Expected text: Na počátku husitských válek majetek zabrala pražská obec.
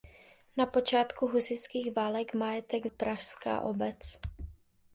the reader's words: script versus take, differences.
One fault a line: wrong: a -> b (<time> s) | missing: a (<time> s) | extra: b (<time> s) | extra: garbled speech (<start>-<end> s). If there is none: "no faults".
missing: zabrala (2.9 s)